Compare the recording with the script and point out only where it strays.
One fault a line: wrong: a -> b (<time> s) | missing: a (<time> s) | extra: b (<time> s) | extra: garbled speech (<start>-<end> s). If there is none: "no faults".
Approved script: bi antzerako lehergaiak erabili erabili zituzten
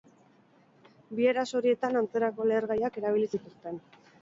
extra: eraso horietan (1.3 s)
missing: erabili (3.3 s)